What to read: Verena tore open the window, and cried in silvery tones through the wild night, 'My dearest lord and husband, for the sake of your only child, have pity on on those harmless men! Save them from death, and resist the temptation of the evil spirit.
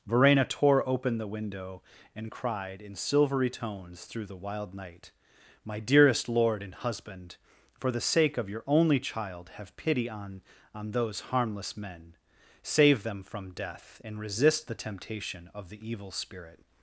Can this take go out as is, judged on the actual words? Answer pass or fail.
pass